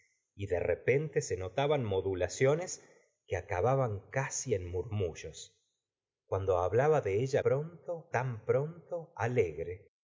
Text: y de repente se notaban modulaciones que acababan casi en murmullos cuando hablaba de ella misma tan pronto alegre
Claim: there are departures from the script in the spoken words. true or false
true